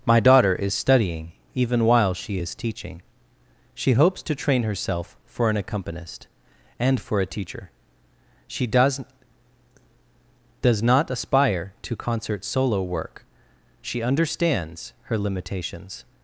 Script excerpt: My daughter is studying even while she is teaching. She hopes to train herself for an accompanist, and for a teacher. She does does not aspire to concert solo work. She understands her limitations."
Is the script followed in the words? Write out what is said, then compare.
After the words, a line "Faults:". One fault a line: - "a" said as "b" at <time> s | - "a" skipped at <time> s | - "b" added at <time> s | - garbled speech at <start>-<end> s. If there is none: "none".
My daughter is studying even while she is teaching. She hopes to train herself for an accompanist, and for a teacher. She does does not aspire to concert solo work. She understands her limitations."
Faults:
none